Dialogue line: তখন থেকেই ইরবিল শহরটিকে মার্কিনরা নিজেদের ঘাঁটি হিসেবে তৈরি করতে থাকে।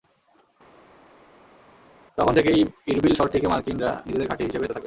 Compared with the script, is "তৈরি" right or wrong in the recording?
wrong